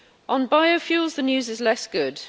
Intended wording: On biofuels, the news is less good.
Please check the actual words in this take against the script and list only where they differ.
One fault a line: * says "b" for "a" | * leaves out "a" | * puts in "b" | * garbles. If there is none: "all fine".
all fine